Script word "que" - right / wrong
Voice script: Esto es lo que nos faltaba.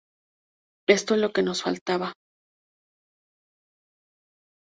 right